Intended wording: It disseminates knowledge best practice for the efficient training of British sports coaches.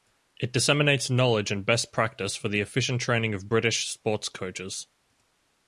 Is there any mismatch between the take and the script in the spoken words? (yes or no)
yes